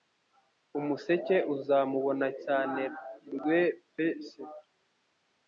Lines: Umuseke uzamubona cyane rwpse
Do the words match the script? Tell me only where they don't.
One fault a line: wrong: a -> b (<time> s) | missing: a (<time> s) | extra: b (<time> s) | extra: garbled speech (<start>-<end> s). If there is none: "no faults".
no faults